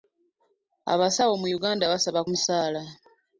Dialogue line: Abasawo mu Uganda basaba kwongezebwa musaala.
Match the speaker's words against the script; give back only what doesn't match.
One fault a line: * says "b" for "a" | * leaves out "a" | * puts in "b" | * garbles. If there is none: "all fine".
* leaves out "kwongezebwa"